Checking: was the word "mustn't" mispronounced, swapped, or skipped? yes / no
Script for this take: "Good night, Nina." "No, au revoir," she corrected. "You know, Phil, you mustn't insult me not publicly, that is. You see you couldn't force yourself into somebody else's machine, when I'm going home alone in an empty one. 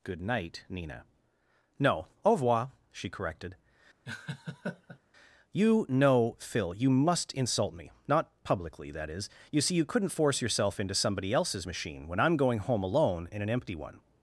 yes